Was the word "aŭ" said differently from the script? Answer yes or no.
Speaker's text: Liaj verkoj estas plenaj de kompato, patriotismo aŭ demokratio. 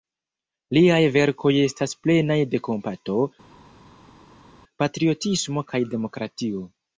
yes